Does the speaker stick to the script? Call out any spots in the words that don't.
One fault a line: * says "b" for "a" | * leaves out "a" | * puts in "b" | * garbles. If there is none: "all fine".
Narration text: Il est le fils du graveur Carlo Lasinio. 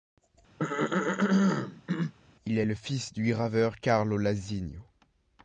all fine